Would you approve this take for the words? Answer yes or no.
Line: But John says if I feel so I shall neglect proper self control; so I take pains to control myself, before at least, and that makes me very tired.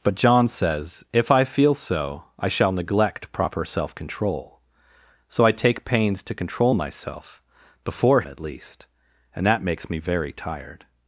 yes